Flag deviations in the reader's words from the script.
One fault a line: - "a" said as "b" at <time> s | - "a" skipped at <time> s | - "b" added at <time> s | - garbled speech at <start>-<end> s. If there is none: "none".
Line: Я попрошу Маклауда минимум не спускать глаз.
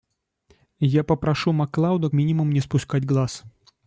none